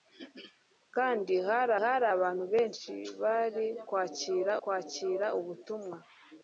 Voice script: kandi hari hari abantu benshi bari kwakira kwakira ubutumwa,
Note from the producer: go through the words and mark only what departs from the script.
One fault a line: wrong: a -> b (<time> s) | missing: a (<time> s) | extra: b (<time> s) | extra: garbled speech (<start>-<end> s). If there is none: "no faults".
no faults